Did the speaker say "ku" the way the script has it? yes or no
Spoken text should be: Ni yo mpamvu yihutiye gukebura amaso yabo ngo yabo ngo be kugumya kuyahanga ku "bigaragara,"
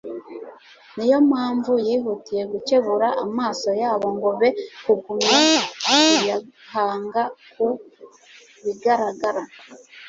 yes